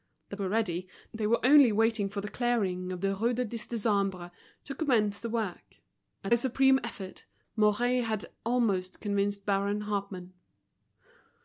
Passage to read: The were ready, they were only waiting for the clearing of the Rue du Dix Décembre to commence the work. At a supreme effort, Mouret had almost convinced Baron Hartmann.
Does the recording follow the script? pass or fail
pass